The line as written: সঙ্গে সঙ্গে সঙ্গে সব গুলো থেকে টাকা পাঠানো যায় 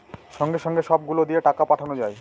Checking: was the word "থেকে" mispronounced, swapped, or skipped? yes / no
yes